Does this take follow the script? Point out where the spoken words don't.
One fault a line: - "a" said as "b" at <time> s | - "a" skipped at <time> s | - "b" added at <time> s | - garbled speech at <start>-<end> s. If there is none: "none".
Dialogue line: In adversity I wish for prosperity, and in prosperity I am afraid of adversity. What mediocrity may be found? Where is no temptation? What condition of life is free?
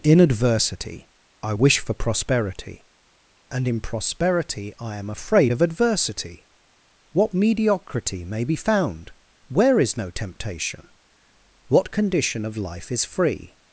none